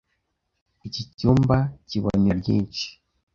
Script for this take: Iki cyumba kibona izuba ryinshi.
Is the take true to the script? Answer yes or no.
no